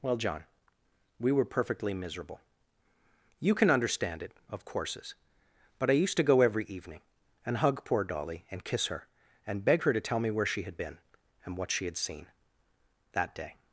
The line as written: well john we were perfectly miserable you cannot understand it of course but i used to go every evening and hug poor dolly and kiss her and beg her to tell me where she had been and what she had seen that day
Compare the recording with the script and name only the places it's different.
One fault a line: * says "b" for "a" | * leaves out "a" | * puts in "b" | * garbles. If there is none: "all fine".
* says "can" for "cannot"
* says "courses" for "course"